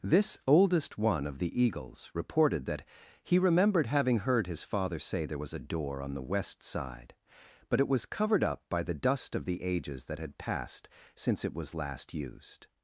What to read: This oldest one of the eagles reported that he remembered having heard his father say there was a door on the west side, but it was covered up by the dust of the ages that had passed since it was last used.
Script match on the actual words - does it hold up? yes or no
yes